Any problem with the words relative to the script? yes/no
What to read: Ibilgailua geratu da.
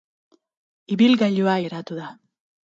no